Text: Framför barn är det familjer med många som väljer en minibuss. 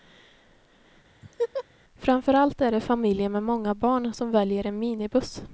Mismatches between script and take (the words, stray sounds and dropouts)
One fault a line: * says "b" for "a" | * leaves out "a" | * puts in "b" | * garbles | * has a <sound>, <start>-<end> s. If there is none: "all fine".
* has a laugh, 1.2-1.6 s
* says "allt" for "barn"
* puts in "barn"